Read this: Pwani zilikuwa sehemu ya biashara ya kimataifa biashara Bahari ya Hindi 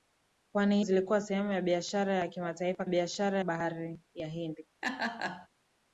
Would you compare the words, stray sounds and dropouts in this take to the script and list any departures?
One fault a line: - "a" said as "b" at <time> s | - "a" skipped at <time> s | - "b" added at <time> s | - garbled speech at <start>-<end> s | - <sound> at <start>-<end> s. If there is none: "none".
- laugh at 4.8-5.5 s